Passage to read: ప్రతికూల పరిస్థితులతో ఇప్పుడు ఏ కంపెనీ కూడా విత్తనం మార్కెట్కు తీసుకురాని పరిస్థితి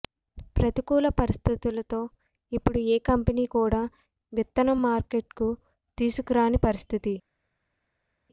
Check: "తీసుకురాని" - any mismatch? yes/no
no